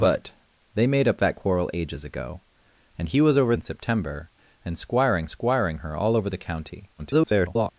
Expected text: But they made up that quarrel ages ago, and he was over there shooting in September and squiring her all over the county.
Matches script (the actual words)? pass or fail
fail